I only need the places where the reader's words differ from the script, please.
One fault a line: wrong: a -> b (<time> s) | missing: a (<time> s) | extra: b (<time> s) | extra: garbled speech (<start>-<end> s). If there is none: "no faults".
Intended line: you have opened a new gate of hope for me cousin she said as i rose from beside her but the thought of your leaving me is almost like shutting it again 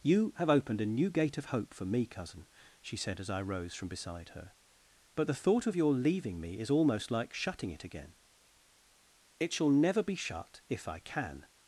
extra: it shall never be shut if i can (9.4 s)